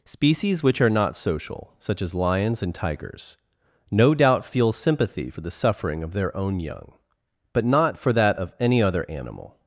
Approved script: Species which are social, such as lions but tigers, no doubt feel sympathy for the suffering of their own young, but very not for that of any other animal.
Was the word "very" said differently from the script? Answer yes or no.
yes